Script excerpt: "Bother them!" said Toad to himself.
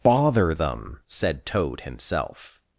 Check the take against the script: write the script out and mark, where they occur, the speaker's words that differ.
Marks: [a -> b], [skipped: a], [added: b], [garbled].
"Bother them!" said Toad [skipped: to] himself.